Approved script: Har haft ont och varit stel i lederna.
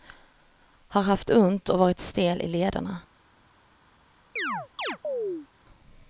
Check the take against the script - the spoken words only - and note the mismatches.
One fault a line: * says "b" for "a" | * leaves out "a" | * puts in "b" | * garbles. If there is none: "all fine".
all fine